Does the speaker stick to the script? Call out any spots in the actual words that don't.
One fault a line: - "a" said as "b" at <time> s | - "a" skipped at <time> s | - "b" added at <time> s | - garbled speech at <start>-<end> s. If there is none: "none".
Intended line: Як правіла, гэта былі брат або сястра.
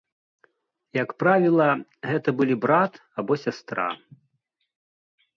none